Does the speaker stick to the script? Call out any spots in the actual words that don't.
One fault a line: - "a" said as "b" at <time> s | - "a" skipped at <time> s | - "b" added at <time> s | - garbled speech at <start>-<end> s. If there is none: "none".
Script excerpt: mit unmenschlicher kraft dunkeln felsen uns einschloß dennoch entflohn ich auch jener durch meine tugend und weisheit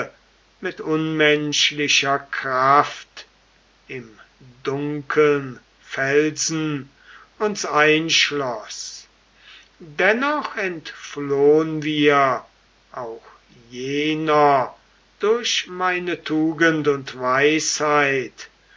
- "im" added at 3.9 s
- "ich" said as "wir" at 11.8 s